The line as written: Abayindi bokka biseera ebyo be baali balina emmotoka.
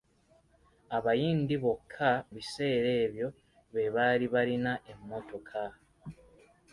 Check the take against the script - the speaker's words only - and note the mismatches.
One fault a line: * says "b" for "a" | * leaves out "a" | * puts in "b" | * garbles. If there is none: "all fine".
all fine